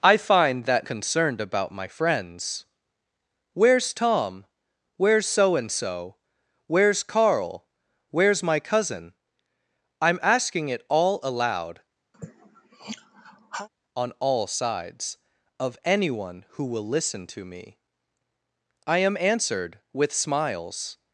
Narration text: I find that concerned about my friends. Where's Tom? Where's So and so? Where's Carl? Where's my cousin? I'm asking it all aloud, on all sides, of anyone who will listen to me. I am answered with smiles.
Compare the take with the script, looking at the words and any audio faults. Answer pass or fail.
fail